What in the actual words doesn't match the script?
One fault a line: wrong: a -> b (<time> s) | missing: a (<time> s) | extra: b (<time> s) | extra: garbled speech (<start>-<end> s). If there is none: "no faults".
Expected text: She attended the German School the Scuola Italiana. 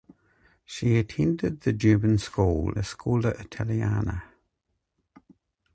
no faults